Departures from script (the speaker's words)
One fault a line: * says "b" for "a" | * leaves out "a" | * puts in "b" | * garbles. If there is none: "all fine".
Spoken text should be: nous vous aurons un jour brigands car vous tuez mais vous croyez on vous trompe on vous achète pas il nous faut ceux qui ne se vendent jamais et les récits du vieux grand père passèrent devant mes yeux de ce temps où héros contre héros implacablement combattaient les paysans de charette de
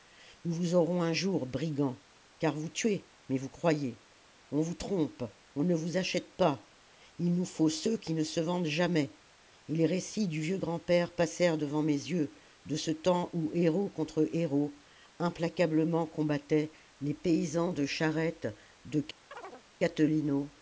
* puts in "ne"